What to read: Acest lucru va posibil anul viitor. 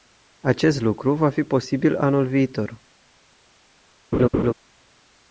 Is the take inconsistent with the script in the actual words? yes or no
yes